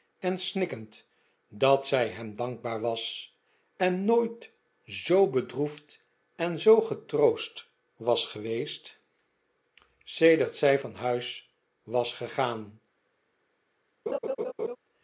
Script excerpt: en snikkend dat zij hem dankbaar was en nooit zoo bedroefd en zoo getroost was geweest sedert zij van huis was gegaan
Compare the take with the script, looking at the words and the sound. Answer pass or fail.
fail